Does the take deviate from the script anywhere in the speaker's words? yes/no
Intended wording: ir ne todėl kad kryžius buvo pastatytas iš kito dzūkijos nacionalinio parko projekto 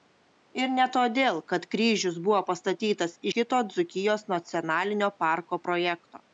yes